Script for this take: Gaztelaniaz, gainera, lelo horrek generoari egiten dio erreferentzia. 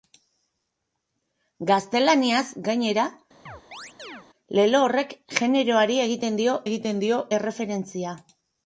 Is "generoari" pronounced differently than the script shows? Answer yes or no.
no